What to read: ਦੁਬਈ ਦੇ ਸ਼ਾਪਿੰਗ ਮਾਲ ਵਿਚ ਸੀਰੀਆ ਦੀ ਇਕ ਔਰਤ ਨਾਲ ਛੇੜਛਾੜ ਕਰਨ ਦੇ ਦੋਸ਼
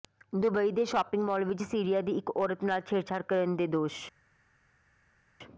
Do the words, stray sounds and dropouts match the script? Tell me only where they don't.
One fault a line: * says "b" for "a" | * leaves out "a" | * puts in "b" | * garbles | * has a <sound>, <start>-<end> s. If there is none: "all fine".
all fine